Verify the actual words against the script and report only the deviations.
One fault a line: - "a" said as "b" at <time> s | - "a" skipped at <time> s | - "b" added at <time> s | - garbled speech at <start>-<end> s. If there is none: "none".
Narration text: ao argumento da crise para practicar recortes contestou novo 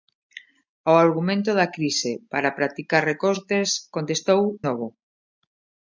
none